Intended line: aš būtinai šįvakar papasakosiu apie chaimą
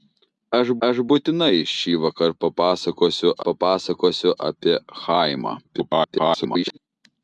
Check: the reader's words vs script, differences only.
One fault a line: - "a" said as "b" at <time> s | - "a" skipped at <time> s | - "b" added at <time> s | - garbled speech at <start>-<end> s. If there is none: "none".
- "aš" added at 0.9 s
- "papasakosiu" added at 3.5 s
- garbled speech at 5.6-6.8 s